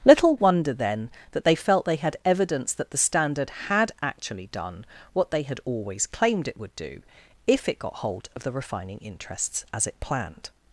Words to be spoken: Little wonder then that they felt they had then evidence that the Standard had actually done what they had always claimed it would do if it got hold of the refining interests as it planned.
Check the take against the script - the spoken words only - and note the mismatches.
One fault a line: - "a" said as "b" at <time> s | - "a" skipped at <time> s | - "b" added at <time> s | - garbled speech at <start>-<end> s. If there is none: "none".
- "then" skipped at 2.2 s